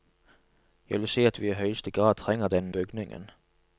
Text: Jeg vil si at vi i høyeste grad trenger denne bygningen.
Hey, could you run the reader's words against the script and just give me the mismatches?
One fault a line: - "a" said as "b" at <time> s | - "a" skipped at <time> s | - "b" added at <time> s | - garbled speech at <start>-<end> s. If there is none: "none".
none